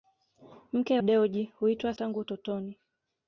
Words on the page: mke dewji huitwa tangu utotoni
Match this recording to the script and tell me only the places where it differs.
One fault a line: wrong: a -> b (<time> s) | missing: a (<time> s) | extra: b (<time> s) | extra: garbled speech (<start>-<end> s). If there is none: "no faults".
no faults